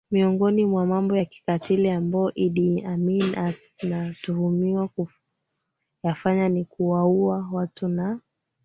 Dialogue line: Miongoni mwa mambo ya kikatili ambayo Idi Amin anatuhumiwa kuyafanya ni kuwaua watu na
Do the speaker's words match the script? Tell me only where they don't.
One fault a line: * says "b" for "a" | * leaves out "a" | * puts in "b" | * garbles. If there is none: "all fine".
all fine